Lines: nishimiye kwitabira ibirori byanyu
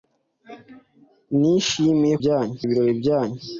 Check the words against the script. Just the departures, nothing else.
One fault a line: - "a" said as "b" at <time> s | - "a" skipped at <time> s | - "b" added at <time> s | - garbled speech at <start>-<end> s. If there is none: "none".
- "kwitabira" said as "byanyu" at 2.2 s